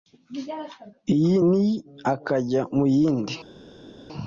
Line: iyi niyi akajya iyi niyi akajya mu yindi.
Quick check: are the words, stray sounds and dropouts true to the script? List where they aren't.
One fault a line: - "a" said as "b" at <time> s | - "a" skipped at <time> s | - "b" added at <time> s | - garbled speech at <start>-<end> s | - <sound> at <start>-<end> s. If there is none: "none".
- "iyi niyi akajya" skipped at 2.6 s